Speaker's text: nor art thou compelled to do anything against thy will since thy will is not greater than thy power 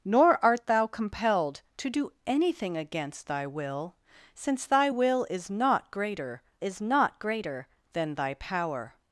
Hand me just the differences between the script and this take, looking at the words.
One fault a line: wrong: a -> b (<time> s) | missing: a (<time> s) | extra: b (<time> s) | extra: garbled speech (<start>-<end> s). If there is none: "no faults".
extra: is not greater (6.6 s)